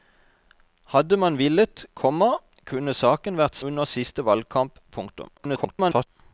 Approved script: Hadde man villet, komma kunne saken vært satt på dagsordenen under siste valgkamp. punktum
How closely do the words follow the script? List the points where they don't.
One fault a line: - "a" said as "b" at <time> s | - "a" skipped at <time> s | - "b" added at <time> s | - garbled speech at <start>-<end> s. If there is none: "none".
- "satt på dagsordenen" skipped at 3.6 s
- garbled speech at 5.4-6.1 s